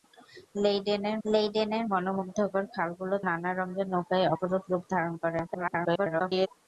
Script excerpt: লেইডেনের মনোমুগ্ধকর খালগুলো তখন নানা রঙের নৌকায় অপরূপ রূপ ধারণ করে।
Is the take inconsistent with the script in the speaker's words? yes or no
yes